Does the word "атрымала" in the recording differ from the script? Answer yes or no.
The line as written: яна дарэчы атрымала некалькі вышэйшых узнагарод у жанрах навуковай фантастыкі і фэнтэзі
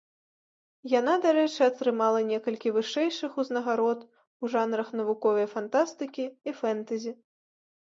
no